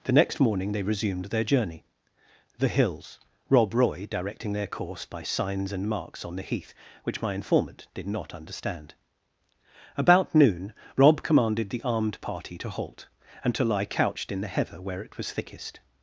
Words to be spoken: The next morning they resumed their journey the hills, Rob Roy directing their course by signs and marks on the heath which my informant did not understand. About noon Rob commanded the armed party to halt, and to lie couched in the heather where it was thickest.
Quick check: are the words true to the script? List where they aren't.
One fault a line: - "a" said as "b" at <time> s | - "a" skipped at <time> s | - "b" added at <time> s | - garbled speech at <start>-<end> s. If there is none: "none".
none